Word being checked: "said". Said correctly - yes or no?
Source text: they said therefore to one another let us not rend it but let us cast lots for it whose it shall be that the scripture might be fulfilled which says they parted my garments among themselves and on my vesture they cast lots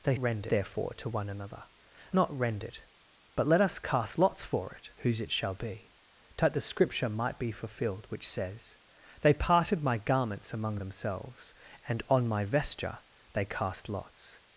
no